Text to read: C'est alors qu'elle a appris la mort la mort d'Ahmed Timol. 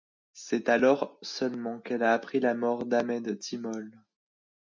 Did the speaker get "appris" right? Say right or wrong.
right